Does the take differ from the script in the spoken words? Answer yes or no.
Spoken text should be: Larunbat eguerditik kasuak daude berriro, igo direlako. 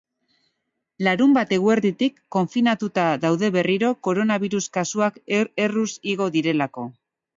yes